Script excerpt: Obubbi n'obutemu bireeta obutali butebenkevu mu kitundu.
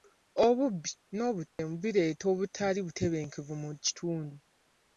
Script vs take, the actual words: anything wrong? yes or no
no